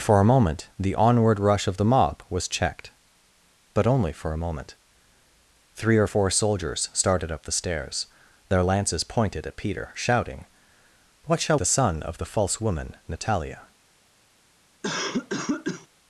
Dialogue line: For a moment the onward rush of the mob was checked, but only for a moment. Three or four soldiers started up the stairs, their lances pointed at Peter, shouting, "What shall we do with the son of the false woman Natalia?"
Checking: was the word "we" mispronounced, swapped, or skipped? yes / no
yes